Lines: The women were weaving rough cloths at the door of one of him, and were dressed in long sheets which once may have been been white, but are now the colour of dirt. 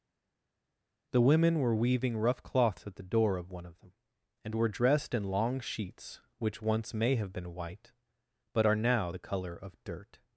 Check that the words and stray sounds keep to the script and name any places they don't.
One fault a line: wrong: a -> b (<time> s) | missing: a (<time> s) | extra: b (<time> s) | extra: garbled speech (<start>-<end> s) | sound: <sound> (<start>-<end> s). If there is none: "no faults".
wrong: him -> them (3.8 s)
missing: been (7.5 s)